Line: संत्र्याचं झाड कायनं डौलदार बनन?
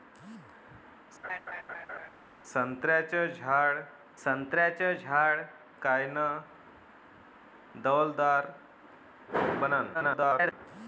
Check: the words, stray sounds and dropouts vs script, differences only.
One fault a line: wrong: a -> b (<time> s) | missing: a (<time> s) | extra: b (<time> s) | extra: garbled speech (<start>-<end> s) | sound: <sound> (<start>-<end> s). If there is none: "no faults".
sound: laugh (1.2-2.1 s)
extra: संत्र्याचं झाड (4.2 s)
extra: garbled speech (9.9-10.5 s)